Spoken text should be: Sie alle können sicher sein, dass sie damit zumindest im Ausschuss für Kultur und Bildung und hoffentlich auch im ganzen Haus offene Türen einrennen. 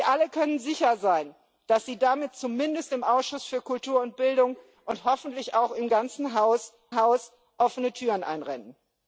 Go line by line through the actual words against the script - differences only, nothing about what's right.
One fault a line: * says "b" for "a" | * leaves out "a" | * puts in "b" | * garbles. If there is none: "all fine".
* puts in "Haus"